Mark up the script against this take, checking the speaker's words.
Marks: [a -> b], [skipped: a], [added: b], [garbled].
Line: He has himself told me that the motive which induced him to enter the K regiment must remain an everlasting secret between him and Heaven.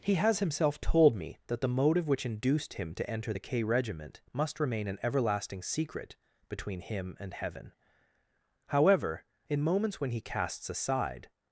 He has himself told me that the motive which induced him to enter the K regiment must remain an everlasting secret between him and Heaven. [added: However in moments when he casts aside]